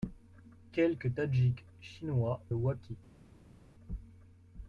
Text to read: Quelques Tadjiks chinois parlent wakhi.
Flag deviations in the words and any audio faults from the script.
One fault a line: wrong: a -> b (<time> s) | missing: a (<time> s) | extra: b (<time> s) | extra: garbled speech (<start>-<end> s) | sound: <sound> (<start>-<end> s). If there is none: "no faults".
missing: parlent (2.4 s)